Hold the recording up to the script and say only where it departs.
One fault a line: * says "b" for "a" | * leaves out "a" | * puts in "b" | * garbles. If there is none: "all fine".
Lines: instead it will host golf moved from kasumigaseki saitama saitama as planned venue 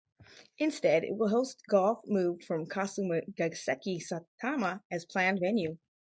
* leaves out "saitama"